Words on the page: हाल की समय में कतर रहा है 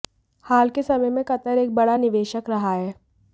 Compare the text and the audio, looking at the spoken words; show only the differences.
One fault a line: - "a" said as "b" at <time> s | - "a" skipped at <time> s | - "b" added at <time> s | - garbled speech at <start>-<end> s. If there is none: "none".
- "की" said as "के" at 0.7 s
- "एक बड़ा निवेशक" added at 1.6 s